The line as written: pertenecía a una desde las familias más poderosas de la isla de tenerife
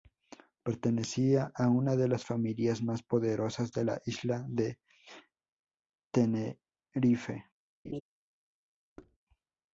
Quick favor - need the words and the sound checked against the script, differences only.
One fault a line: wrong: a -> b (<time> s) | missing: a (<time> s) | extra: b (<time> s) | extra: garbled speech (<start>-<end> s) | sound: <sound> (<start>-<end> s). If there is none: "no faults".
wrong: desde -> de (1.9 s)
sound: laugh (7.8-8.0 s)
sound: thud (9.0-9.2 s)